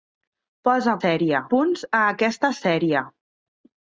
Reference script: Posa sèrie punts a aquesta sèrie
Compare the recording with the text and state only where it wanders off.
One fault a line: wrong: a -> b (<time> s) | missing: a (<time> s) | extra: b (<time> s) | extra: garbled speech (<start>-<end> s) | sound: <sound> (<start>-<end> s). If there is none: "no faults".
no faults